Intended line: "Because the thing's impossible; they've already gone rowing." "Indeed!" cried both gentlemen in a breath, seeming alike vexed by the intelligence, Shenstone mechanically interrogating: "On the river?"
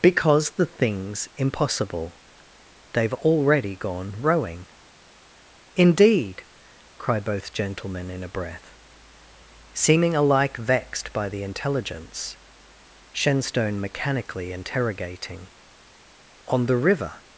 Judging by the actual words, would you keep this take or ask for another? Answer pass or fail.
pass